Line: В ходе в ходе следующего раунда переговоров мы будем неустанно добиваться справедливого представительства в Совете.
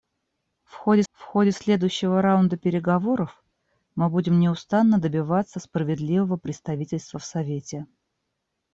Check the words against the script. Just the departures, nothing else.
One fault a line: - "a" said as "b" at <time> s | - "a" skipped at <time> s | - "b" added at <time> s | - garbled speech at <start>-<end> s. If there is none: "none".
none